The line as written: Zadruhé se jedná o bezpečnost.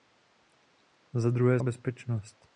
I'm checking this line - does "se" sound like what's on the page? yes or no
no